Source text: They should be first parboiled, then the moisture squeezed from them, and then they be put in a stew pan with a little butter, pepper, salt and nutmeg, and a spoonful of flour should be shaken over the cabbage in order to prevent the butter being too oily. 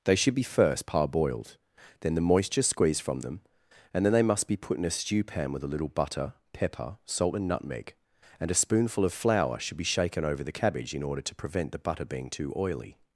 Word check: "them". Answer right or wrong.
right